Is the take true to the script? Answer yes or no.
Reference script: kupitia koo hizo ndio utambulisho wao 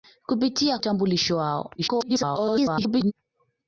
no